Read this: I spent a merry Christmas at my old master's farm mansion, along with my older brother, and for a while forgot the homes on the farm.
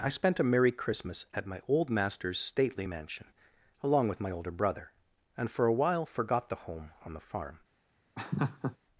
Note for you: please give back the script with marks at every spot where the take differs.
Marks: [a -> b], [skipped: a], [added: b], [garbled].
I spent a merry Christmas at my old master's [farm -> stately] mansion, along with my older brother, and for a while forgot the [homes -> home] on the farm.